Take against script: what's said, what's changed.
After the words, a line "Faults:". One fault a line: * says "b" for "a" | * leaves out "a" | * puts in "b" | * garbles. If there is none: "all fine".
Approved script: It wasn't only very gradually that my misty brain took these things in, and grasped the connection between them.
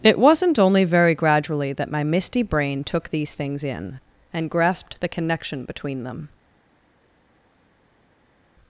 It wasn't only very gradually that my misty brain took these things in, and grasped the connection between them.
Faults:
all fine